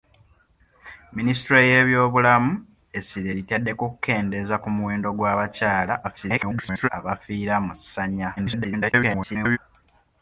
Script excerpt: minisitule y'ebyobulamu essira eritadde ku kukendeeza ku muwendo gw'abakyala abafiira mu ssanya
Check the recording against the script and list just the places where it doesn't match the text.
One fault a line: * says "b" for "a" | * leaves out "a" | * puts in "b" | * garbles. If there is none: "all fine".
* garbles
* garbles